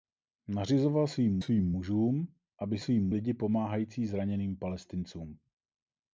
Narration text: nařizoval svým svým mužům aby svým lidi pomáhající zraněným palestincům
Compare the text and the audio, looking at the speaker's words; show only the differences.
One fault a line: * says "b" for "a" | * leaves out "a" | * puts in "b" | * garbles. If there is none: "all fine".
all fine